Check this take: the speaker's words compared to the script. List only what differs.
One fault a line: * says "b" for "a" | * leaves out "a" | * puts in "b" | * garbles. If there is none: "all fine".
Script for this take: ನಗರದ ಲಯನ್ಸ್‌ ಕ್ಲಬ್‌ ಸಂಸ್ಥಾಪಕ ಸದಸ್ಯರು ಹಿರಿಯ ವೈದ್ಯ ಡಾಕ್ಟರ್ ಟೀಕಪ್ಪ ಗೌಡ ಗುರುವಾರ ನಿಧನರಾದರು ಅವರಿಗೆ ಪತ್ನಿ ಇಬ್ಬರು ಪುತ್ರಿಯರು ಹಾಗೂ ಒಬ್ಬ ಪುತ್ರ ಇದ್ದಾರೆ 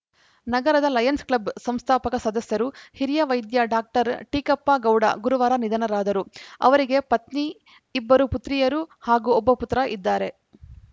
all fine